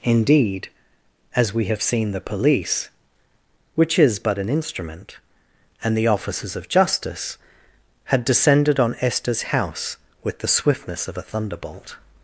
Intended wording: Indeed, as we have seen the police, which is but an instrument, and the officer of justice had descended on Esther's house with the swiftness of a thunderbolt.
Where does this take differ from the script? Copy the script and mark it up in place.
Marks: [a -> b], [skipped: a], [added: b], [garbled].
Indeed, as we have seen the police, which is but an instrument, and the [officer -> officers] of justice had descended on Esther's house with the swiftness of a thunderbolt.